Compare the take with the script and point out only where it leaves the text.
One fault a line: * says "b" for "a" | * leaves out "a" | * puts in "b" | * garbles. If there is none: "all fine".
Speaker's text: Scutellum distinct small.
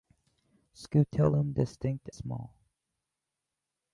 all fine